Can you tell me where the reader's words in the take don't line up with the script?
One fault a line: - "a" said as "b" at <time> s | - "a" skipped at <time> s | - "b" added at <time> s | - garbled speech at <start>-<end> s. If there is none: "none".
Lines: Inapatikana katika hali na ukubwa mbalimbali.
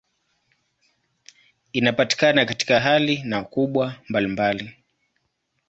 none